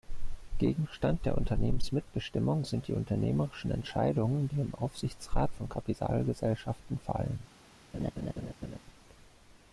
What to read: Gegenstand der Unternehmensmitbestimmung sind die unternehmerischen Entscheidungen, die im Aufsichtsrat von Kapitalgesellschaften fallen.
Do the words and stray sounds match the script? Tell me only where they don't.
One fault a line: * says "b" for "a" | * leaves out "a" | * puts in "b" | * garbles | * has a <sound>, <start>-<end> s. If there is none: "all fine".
* has a laugh, 7.9-8.8 s